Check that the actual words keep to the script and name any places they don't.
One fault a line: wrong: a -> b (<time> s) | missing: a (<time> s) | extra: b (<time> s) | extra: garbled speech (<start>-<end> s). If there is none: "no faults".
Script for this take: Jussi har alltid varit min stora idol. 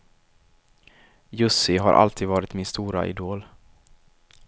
no faults